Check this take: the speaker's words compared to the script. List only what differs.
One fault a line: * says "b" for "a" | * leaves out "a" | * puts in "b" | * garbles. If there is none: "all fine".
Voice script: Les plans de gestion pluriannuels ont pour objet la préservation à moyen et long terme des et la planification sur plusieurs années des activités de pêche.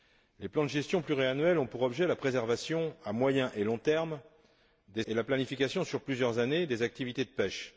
all fine